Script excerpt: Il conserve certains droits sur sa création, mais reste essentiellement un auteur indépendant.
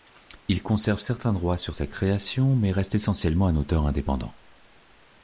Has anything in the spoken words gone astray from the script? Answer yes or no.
no